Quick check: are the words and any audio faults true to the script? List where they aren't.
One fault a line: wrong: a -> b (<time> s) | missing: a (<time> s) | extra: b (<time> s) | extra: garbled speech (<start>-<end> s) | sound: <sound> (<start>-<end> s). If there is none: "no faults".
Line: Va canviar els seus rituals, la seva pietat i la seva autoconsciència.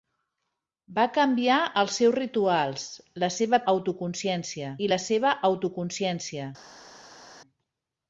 wrong: pietat -> autoconsciència (3.7 s)